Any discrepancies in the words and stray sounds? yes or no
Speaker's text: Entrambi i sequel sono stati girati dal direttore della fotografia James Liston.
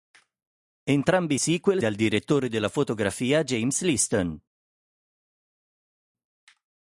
yes